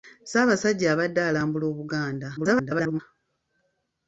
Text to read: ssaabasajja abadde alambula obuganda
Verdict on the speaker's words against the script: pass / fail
fail